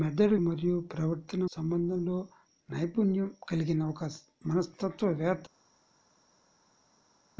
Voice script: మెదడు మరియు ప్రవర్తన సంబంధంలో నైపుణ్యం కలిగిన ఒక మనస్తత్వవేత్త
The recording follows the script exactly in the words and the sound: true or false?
true